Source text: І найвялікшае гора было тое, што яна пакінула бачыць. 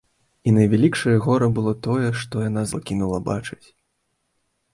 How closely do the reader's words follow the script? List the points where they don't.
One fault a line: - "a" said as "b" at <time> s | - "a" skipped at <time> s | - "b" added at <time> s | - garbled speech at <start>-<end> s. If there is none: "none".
none